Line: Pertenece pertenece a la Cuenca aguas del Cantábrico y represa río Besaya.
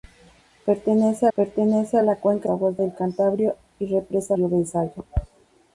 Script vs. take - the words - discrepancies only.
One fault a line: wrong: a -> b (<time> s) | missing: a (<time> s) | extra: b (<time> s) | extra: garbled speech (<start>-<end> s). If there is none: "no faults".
no faults